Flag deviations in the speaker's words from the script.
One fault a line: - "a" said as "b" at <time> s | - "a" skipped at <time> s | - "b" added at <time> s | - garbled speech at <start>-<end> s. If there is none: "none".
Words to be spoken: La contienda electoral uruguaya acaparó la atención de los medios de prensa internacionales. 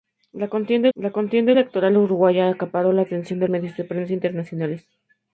- "la contienda" added at 1.0 s
- "los" skipped at 3.5 s